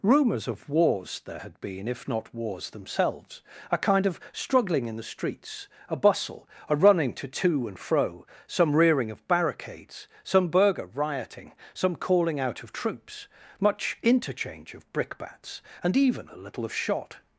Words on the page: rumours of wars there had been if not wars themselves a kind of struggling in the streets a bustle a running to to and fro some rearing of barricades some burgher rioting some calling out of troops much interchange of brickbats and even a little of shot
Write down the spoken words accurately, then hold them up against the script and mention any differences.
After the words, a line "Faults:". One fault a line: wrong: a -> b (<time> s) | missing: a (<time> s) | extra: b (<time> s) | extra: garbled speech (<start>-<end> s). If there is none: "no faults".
rumours of wars there had been if not wars themselves a kind of struggling in the streets a bustle a running to to and fro some rearing of barricades some burgher rioting some calling out of troops much interchange of brickbats and even a little of shot
Faults:
no faults